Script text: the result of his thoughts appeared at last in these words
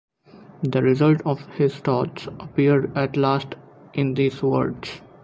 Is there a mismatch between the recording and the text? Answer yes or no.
no